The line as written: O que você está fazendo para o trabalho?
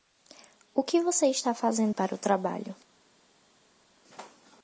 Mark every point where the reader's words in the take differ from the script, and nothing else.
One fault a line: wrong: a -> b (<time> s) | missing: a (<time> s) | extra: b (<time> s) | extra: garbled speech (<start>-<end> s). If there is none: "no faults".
no faults